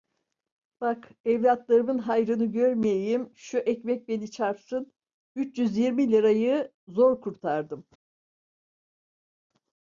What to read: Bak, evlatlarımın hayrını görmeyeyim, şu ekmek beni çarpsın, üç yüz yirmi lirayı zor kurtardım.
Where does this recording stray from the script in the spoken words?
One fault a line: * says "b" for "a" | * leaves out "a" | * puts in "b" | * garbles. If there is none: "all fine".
all fine